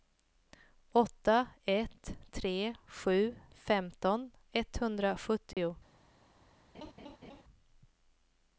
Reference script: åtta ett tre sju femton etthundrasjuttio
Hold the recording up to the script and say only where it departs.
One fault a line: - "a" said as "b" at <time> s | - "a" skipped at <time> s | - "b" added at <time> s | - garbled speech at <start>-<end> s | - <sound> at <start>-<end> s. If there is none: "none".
- dropout at 5.5-5.6 s
- laugh at 6.7-7.4 s